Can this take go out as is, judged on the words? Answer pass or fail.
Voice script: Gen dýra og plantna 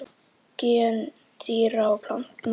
pass